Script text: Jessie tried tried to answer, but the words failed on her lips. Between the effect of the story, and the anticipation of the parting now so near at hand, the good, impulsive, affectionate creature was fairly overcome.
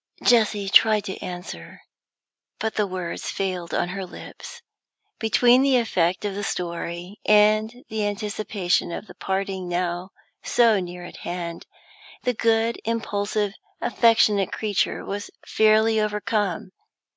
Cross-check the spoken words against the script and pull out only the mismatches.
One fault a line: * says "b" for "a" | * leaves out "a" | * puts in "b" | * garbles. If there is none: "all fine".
* leaves out "tried"